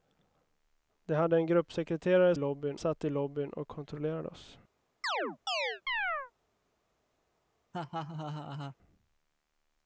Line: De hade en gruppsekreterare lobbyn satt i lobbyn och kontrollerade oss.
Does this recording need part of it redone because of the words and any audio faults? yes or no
yes